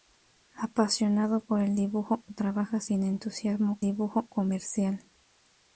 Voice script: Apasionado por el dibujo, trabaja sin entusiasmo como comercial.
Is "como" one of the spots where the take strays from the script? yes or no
yes